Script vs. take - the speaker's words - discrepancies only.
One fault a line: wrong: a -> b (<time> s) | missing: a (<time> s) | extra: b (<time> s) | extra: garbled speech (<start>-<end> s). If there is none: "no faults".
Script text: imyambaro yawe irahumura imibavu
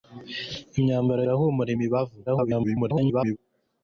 missing: yawe (1.2 s)
extra: garbled speech (2.3-3.4 s)